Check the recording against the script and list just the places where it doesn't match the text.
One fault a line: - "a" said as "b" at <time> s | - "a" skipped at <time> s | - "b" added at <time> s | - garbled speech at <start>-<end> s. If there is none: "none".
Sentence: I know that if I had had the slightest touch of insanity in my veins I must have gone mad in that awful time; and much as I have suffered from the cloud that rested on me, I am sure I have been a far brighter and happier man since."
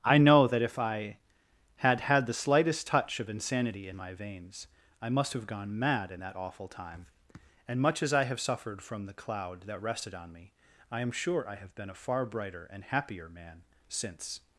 none